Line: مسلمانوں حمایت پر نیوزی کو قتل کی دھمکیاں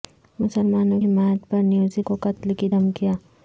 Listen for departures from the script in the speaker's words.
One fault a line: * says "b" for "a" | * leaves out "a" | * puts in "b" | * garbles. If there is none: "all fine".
all fine